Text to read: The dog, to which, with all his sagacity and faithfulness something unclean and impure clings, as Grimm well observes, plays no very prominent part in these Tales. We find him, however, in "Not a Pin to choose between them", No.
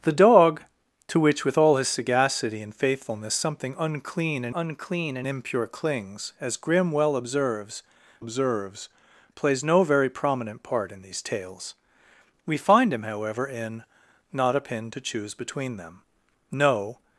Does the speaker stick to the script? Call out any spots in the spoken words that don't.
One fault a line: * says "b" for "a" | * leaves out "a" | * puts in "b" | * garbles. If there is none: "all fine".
* puts in "unclean and"
* puts in "observes"